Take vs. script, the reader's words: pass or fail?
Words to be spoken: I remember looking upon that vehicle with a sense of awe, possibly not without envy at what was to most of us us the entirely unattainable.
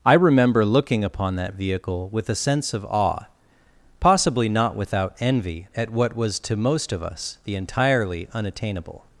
fail